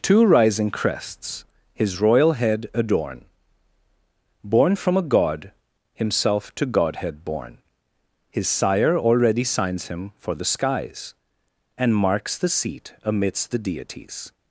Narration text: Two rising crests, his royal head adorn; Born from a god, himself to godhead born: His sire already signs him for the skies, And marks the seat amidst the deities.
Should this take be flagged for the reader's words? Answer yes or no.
no